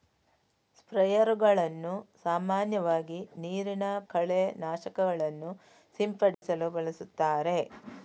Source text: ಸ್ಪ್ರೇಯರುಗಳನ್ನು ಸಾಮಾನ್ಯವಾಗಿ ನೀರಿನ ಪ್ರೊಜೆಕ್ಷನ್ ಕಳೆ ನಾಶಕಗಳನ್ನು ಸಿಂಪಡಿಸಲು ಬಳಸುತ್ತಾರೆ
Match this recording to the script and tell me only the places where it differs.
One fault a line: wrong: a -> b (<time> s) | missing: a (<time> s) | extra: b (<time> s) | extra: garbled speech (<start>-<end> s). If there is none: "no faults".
missing: ಪ್ರೊಜೆಕ್ಷನ್ (3.8 s)